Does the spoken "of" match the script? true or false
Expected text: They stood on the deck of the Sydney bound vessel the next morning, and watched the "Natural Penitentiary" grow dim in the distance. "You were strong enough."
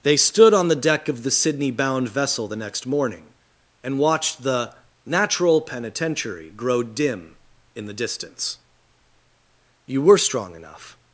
true